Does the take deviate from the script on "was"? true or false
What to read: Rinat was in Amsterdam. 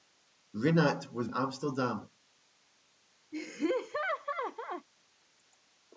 false